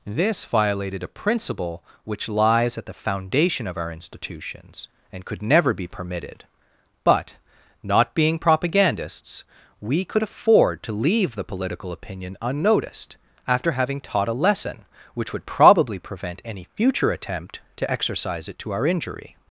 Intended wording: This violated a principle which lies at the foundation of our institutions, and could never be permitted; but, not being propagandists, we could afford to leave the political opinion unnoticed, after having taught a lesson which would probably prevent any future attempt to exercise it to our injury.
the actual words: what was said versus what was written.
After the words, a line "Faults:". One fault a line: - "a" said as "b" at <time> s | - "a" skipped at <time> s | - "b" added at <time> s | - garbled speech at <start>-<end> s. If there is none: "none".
This violated a principle which lies at the foundation of our institutions, and could never be permitted; but, not being propagandists, we could afford to leave the political opinion unnoticed, after having taught a lesson which would probably prevent any future attempt to exercise it to our injury.
Faults:
none